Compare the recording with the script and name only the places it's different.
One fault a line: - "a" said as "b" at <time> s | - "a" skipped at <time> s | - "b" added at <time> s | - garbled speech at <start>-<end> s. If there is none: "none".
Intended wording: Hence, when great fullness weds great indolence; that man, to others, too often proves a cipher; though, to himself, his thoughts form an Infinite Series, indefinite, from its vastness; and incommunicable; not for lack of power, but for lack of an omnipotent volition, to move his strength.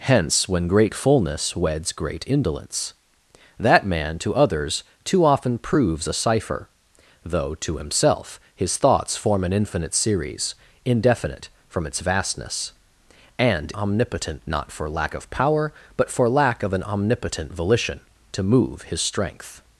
- "incommunicable" said as "omnipotent" at 13.7 s